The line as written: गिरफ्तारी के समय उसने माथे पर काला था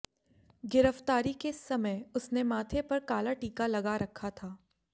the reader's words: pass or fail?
fail